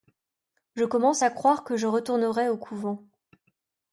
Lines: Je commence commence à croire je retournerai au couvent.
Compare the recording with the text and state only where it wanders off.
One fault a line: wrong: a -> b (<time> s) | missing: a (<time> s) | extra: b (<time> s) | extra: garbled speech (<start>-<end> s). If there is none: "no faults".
missing: commence (1.2 s)
extra: que (1.7 s)